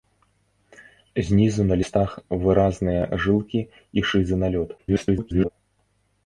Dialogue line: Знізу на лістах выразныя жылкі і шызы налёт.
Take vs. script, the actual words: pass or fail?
fail